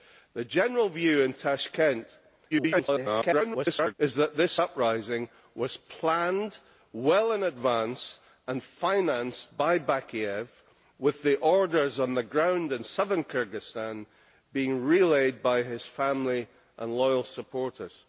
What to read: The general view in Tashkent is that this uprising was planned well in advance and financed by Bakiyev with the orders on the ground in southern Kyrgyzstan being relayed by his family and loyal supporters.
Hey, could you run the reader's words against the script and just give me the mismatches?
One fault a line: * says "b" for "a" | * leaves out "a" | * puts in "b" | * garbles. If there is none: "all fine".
* garbles